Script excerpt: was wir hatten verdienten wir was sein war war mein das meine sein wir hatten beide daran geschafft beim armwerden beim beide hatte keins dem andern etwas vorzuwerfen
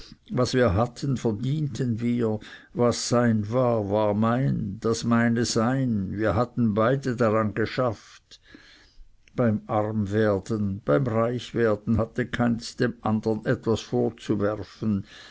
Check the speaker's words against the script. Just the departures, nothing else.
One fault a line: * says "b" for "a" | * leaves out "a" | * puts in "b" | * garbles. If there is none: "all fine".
* says "reichwerden" for "beide"